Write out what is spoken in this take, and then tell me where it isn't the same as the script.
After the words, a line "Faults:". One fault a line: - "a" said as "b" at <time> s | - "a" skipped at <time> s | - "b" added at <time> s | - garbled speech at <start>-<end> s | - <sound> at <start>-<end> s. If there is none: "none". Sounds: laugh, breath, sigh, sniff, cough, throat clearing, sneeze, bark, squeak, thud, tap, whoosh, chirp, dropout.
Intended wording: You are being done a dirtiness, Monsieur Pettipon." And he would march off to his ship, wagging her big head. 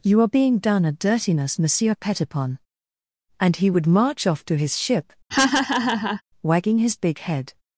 You are being done a dirtiness, Monsieur Pettipon." And he would march off to his ship, wagging his big head.
Faults:
- laugh at 5.3-6.2 s
- "her" said as "his" at 6.8 s